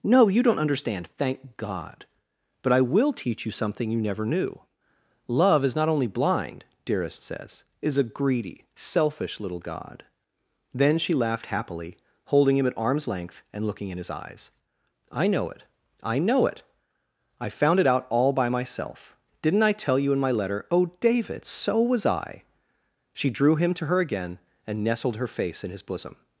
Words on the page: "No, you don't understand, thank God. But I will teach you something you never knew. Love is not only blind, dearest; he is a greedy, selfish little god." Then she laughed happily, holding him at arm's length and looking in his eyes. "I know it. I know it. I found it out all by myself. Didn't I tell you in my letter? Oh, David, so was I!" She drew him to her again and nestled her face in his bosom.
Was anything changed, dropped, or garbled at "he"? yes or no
yes